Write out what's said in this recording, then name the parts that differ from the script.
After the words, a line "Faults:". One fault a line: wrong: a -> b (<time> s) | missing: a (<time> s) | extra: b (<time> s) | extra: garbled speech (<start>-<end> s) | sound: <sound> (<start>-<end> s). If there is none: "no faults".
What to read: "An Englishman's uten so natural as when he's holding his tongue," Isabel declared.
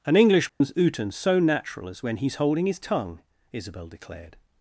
"An Englishman's uten so natural as when he's holding his tongue," Isabel declared.
Faults:
sound: dropout (0.5-0.6 s)